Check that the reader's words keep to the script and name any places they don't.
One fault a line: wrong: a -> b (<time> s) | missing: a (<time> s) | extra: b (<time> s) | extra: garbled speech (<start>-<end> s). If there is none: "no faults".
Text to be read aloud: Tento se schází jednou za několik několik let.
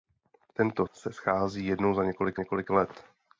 no faults